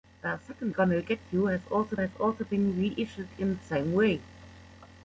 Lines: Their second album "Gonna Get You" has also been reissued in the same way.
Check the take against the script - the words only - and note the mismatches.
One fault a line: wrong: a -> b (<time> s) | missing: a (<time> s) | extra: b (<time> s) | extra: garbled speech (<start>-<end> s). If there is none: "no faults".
missing: album (0.7 s)
extra: has also (2.0 s)